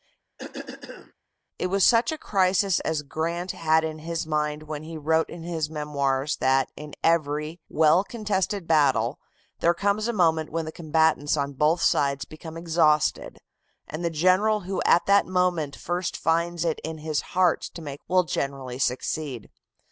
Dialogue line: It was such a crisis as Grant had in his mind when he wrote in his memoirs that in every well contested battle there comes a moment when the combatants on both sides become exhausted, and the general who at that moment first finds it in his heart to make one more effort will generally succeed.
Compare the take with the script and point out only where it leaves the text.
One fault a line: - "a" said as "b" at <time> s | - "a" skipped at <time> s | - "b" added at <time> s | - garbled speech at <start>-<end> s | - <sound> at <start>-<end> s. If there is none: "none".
- cough at 0.4-1.1 s
- "one more effort" skipped at 18.0 s